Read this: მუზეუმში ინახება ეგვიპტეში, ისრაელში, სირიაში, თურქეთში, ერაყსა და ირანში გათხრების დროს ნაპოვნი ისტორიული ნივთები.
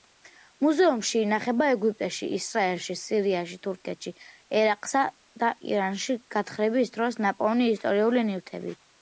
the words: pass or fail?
pass